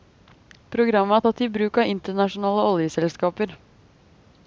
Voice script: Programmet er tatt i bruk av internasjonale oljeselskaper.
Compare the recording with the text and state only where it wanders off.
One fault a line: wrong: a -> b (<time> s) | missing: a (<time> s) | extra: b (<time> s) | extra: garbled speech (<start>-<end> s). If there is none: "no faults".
no faults